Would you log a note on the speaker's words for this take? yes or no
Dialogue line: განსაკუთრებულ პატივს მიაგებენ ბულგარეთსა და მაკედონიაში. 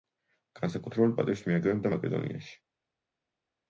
yes